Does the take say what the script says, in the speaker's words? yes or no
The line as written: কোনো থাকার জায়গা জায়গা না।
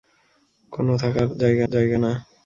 yes